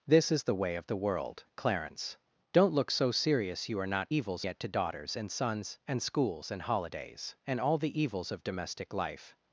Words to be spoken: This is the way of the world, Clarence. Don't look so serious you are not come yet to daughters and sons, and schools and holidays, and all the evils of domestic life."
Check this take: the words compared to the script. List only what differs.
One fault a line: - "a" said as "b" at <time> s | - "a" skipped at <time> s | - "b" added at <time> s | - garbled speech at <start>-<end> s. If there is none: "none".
- "come" said as "evils" at 4.1 s